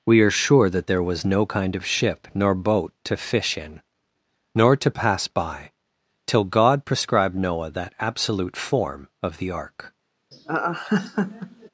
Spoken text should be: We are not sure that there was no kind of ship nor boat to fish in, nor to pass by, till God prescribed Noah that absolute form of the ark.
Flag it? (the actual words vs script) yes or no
yes